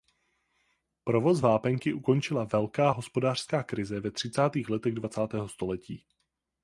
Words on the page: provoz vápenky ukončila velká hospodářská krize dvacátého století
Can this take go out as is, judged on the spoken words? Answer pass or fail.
fail